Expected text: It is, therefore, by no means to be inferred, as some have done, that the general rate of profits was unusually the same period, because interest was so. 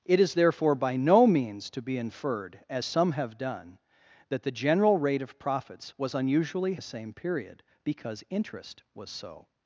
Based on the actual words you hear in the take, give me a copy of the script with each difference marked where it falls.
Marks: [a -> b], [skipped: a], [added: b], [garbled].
It is, therefore, by no means to be inferred, as some have done, that the general rate of profits was unusually the same period, because interest was so.